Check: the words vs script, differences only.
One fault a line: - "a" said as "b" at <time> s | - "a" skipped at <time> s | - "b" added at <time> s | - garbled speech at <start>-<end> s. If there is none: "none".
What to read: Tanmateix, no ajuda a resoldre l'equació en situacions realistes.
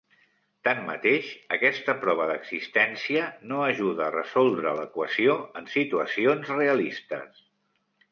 - "aquesta prova d'existència" added at 1.6 s